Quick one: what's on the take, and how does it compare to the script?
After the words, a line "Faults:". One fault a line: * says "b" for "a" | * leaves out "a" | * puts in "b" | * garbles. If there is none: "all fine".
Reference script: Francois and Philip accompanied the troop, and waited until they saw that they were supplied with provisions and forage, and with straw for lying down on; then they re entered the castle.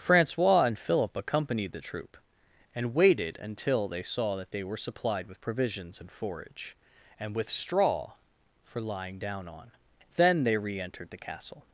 Francois and Philip accompanied the troop, and waited until they saw that they were supplied with provisions and forage, and with straw for lying down on; then they re entered the castle.
Faults:
all fine